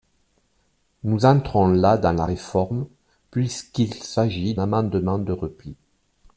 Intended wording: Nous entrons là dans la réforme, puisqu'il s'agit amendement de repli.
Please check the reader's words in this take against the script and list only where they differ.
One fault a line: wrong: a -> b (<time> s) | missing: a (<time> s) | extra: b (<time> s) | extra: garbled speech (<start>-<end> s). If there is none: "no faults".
no faults